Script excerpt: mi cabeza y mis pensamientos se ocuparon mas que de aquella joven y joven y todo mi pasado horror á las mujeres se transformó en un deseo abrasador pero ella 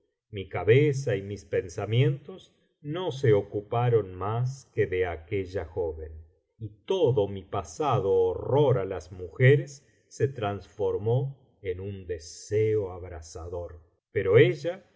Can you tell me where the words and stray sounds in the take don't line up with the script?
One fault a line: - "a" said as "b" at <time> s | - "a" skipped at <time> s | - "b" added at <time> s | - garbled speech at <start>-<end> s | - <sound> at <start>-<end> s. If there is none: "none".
- "no" added at 2.8 s
- "joven y" skipped at 6.7 s